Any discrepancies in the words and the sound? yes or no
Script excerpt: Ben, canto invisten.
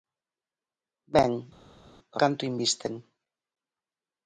no